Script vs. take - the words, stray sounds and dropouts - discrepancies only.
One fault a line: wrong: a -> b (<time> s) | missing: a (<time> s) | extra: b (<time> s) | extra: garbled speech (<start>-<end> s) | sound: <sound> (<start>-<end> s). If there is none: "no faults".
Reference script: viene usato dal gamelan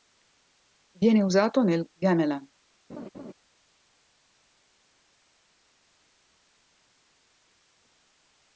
wrong: dal -> nel (1.6 s)
sound: laugh (2.9-3.3 s)